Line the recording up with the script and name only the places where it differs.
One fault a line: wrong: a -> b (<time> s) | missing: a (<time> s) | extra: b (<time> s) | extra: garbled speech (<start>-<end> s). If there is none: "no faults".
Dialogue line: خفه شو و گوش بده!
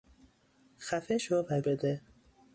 missing: گوش (1.6 s)